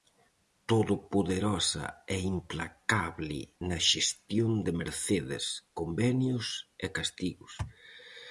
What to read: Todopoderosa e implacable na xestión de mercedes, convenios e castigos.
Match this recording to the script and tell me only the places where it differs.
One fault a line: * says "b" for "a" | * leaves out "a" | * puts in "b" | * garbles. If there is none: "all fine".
all fine